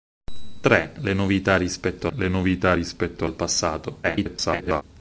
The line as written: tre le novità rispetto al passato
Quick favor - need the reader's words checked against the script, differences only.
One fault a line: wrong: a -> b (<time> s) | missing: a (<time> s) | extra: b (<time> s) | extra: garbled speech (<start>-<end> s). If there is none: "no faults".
extra: le novità rispetto (2.2 s)
extra: garbled speech (4.0-4.8 s)